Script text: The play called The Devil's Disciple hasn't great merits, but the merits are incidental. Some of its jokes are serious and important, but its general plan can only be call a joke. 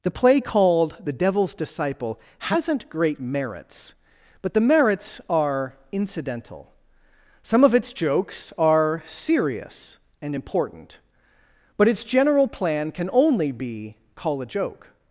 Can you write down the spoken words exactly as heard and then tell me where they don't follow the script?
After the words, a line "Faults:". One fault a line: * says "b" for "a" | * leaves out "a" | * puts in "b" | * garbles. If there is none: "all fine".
The play called The Devil's Disciple hasn't great merits, but the merits are incidental. Some of its jokes are serious and important, but its general plan can only be call a joke.
Faults:
all fine